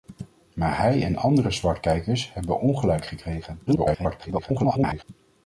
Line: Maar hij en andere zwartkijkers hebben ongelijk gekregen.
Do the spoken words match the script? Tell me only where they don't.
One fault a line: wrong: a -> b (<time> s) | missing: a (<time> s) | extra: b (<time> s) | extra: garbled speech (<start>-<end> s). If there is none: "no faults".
extra: garbled speech (3.7-5.0 s)